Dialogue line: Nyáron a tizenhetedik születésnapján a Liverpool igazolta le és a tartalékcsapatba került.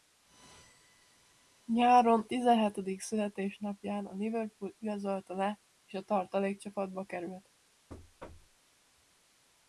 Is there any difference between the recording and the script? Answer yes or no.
yes